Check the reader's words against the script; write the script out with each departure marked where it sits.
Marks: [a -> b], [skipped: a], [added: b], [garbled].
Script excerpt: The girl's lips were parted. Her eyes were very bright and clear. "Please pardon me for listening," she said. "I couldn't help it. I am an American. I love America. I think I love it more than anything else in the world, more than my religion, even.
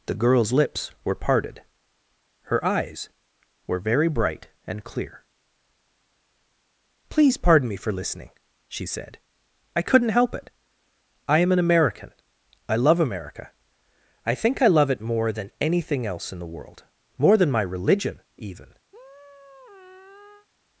The girl's lips were parted. Her eyes were very bright and clear. "Please pardon me for listening," she said. "I couldn't help it. I am an American. I love America. I think I love it more than anything else in the world, more than my religion, even.